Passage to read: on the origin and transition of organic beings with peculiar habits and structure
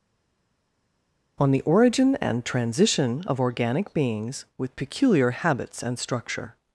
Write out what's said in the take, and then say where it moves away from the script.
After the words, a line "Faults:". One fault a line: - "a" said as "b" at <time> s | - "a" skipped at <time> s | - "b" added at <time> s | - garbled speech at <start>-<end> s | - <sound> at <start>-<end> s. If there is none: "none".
on the origin and transition of organic beings with peculiar habits and structure
Faults:
none